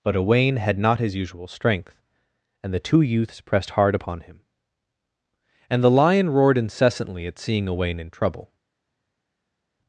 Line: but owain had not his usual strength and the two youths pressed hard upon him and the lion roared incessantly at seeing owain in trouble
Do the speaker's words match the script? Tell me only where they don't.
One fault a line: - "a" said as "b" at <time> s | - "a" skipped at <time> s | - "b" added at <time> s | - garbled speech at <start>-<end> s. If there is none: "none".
none